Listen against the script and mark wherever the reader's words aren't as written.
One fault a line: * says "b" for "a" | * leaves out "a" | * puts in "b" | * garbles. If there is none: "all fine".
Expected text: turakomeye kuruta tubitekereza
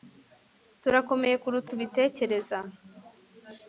all fine